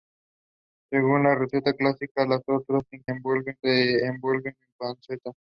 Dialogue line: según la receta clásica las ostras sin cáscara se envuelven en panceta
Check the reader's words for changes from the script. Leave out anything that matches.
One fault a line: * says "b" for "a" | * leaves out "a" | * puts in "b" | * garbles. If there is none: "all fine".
* says "envuelven" for "cáscara"